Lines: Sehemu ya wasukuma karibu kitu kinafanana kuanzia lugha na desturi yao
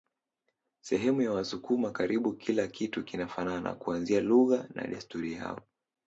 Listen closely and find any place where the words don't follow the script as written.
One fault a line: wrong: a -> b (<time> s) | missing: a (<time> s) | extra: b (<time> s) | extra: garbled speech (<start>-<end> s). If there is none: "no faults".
extra: kila (2.4 s)